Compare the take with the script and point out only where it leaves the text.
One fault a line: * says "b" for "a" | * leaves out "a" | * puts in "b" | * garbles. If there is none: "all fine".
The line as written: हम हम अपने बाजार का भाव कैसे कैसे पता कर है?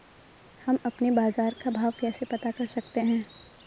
* leaves out "हम"
* leaves out "कैसे"
* puts in "सकते"